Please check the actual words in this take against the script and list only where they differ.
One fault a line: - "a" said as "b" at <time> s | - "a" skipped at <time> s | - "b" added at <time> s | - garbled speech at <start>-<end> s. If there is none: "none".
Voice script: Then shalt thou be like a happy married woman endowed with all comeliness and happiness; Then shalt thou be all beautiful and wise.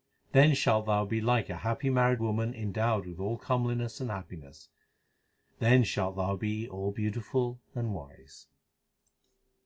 none